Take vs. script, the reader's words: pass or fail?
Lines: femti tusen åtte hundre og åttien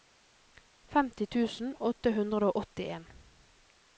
pass